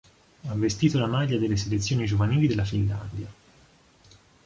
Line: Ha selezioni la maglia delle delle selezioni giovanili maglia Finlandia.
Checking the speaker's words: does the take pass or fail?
fail